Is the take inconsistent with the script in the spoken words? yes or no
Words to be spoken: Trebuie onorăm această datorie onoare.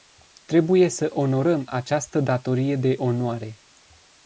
yes